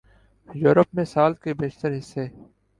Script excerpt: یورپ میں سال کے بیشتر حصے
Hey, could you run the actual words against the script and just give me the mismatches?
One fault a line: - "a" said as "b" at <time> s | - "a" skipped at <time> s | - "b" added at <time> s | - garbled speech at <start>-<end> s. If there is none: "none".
none